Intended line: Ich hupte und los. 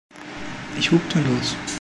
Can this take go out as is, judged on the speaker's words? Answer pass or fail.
pass